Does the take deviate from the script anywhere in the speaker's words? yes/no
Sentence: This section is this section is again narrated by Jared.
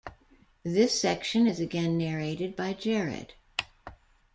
yes